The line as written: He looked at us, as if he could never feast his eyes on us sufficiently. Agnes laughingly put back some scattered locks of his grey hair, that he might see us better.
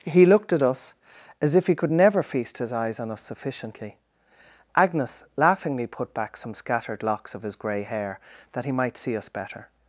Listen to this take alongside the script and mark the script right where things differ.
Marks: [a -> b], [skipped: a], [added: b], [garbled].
He looked at us, as if he could never feast his eyes on us sufficiently. Agnes laughingly put back some scattered locks of his grey hair, that he might see us better.